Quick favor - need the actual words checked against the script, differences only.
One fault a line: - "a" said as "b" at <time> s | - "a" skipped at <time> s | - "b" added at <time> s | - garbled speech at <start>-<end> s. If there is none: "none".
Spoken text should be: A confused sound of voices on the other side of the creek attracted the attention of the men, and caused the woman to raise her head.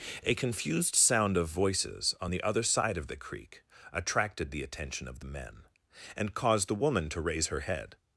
none